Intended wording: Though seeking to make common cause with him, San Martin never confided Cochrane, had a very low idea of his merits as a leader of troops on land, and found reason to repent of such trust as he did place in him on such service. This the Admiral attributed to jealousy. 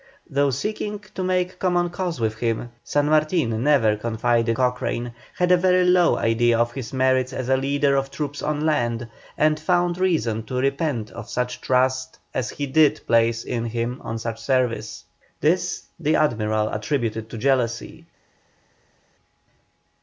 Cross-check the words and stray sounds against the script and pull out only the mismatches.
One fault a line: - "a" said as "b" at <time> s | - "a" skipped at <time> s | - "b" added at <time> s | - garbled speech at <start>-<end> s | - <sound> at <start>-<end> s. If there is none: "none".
none